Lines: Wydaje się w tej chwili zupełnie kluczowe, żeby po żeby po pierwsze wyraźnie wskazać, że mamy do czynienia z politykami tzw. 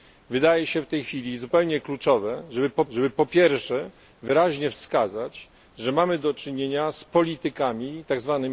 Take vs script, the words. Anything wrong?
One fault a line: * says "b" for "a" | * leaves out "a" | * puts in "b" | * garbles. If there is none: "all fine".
all fine